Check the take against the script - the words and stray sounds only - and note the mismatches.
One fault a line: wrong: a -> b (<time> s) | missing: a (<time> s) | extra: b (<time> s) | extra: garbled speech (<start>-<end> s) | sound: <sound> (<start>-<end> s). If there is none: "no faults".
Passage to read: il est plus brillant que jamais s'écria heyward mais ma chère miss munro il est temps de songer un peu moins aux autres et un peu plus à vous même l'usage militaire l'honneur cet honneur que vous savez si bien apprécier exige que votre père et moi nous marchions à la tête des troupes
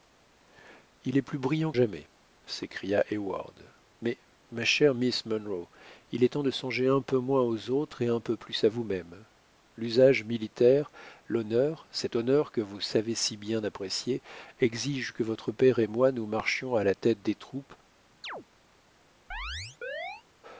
missing: que (1.7 s)
sound: chirp (18.2-18.4 s)
sound: chirp (19.3-20.2 s)